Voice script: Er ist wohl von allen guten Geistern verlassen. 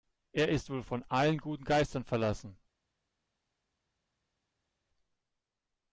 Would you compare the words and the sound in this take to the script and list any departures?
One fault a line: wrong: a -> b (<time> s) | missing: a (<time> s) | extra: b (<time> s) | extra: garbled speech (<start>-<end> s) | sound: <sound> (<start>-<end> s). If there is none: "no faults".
no faults